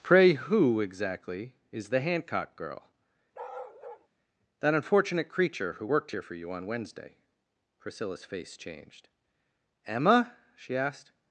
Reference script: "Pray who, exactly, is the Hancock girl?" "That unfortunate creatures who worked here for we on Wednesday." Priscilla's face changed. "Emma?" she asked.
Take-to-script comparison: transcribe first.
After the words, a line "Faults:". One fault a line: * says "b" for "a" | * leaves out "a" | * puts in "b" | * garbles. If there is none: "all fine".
"Pray who, exactly, is the Hancock girl?" "That unfortunate creature who worked here for you on Wednesday." Priscilla's face changed. "Emma?" she asked.
Faults:
* says "creature" for "creatures"
* says "you" for "we"